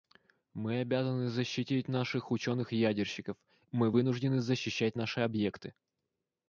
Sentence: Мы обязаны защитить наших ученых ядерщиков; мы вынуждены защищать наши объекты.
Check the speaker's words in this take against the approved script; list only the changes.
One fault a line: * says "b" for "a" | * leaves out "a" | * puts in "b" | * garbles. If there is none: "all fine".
all fine